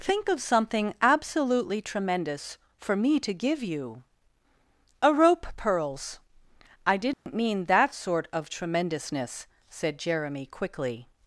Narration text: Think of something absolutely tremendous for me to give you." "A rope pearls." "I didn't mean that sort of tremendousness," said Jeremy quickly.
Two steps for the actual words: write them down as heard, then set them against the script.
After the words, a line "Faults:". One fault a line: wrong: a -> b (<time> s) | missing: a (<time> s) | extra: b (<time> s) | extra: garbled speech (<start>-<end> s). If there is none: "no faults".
Think of something absolutely tremendous for me to give you." "A rope pearls." "I didn't mean that sort of tremendousness," said Jeremy quickly.
Faults:
no faults